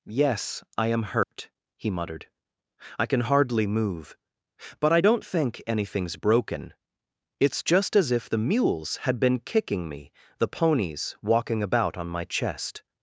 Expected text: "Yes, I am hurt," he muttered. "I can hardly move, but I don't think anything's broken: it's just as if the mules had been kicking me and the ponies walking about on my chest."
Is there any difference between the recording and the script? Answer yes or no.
yes